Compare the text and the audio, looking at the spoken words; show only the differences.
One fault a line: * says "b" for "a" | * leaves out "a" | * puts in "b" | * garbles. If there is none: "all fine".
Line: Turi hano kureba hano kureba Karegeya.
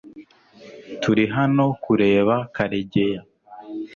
* leaves out "hano kureba"